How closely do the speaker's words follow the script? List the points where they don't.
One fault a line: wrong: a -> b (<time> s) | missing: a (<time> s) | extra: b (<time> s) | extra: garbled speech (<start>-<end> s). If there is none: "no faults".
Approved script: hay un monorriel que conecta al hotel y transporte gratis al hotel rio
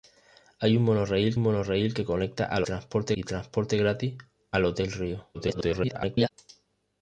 extra: monorriel (1.4 s)
wrong: hotel -> transporte (2.6 s)
extra: garbled speech (5.3-6.3 s)